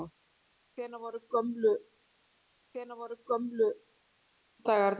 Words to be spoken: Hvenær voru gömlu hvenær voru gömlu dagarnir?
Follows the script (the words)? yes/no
yes